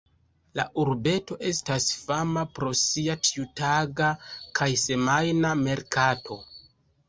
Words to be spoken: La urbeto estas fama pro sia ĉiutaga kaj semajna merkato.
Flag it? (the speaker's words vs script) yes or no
no